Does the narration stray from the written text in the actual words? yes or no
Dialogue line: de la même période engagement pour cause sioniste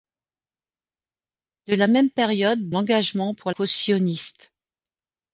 no